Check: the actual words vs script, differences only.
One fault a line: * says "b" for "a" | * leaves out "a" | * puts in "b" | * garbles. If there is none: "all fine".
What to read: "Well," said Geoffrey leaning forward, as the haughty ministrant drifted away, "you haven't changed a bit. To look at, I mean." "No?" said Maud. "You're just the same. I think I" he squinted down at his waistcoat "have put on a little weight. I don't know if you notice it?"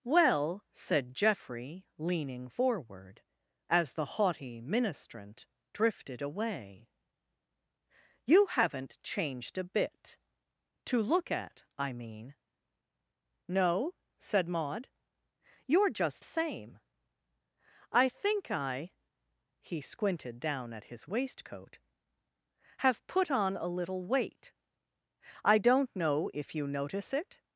* leaves out "the"